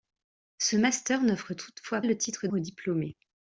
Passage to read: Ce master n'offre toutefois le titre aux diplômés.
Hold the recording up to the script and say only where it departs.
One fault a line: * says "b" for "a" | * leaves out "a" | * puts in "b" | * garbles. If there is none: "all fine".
all fine